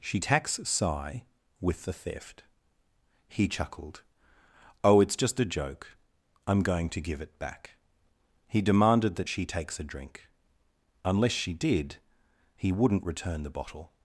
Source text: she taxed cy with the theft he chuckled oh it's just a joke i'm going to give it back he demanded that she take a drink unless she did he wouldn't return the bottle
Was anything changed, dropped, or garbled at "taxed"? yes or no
yes